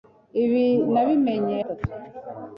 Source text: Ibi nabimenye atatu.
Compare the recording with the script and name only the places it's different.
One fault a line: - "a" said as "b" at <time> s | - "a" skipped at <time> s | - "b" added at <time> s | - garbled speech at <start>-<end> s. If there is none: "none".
none